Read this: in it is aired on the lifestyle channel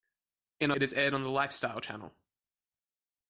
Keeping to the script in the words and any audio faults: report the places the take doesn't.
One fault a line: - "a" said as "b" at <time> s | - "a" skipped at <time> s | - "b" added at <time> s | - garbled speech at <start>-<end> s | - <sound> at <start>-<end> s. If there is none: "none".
none